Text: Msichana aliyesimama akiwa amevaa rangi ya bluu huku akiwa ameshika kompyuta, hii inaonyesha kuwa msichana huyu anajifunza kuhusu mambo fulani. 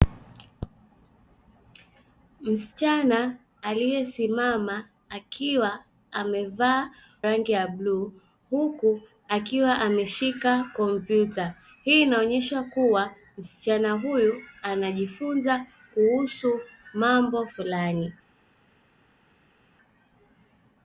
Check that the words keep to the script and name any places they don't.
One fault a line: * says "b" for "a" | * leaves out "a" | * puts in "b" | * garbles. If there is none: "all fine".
all fine